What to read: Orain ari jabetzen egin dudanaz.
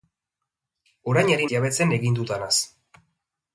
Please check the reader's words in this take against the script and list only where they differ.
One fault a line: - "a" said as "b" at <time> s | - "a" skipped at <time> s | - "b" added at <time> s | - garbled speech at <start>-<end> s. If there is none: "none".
none